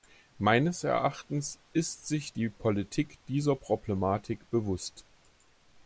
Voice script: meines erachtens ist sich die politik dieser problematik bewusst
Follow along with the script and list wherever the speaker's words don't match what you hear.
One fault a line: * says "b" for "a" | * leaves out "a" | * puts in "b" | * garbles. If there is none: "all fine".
all fine